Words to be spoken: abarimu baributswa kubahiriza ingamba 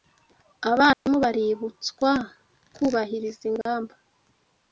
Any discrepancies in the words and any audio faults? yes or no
yes